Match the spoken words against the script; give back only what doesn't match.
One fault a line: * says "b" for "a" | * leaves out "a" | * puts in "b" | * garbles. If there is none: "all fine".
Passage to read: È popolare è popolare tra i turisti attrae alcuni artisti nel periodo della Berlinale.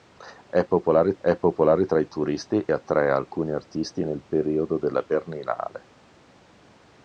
all fine